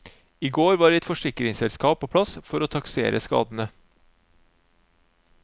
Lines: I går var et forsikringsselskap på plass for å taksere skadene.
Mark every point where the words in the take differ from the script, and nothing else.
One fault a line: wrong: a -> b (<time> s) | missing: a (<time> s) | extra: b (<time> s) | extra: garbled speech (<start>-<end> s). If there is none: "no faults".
no faults